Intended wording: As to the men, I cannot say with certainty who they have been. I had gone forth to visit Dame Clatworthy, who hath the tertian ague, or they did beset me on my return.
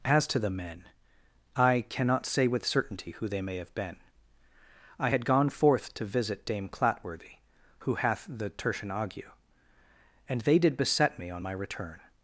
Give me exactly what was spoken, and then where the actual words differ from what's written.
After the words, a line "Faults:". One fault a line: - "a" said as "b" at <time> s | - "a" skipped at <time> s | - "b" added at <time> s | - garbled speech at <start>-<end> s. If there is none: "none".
As to the men, I cannot say with certainty who they may have been. I had gone forth to visit Dame Clatworthy, who hath the tertian ague, and they did beset me on my return.
Faults:
- "may" added at 3.4 s
- "or" said as "and" at 10.3 s